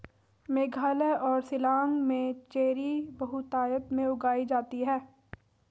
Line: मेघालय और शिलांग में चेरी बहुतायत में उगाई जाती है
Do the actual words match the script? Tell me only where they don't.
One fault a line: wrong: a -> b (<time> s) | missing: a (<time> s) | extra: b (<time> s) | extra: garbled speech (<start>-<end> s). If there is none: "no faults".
no faults